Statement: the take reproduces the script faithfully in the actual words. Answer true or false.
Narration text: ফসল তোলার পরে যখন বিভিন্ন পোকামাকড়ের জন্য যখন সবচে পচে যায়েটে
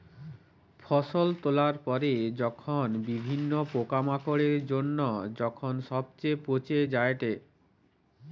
true